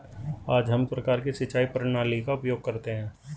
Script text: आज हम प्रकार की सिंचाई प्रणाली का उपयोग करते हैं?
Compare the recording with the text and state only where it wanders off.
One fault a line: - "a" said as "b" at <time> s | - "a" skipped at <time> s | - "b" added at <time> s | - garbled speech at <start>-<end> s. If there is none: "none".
none